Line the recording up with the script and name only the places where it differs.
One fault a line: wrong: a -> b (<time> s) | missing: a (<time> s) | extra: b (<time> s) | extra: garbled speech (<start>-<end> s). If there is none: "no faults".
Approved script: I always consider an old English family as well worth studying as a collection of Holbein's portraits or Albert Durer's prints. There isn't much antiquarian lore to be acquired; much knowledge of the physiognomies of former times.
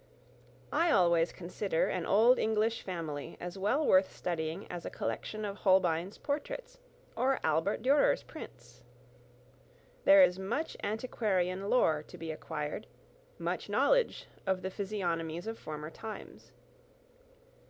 wrong: isn't -> is (10.2 s)